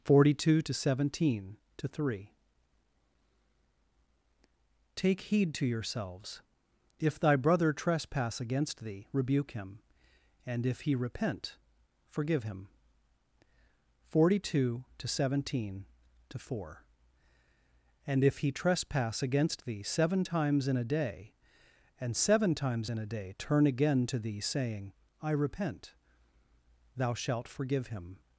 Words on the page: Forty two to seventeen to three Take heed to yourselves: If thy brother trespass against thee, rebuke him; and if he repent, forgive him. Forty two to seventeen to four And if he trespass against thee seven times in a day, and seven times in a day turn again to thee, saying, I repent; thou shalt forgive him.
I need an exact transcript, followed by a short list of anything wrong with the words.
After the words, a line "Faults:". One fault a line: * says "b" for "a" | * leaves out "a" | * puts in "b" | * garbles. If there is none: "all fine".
Forty two to seventeen to three Take heed to yourselves: If thy brother trespass against thee, rebuke him; and if he repent, forgive him. Forty two to seventeen to four And if he trespass against thee seven times in a day, and seven times in a day turn again to thee, saying, I repent; thou shalt forgive him.
Faults:
all fine